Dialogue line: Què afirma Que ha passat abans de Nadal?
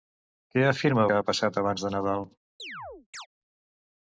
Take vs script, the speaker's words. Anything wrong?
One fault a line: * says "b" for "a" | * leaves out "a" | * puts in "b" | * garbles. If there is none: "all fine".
all fine